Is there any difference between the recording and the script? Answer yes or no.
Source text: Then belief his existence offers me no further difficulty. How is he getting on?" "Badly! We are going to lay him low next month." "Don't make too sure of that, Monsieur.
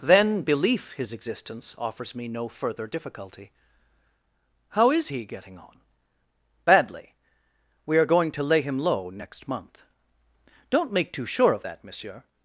no